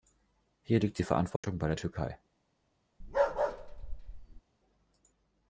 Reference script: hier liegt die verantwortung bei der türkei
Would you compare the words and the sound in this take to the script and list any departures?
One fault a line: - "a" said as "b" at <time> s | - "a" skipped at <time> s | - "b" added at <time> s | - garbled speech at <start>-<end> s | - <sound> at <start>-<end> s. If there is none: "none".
- dropout at 1.4-1.4 s
- bark at 3.0-4.4 s